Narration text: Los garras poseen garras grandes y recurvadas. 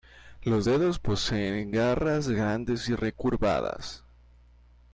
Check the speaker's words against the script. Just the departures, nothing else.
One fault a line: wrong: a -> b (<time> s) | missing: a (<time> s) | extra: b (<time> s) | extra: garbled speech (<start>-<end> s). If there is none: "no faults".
wrong: garras -> dedos (0.6 s)